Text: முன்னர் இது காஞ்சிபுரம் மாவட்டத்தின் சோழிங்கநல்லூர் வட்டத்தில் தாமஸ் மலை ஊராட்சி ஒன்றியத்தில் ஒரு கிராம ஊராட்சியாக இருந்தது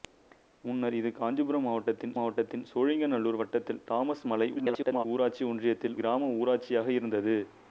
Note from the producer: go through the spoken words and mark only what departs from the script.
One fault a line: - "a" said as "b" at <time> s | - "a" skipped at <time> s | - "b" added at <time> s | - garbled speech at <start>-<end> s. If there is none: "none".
- "மாவட்டத்தின்" added at 2.2 s
- garbled speech at 4.6-5.0 s
- "ஒரு" skipped at 6.0 s